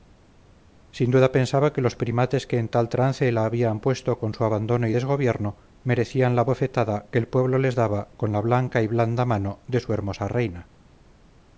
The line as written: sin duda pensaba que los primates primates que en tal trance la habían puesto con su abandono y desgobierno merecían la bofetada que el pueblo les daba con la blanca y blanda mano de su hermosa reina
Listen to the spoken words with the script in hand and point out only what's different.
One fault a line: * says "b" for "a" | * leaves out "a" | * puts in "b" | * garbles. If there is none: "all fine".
* leaves out "primates"